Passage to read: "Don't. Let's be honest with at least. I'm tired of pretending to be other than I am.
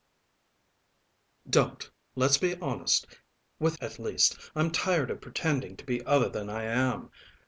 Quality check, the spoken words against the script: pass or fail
pass